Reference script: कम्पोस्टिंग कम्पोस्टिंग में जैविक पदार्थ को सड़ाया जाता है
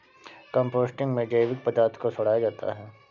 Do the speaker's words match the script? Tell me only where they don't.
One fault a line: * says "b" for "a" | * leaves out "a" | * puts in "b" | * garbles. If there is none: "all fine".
* leaves out "कम्पोस्टिंग"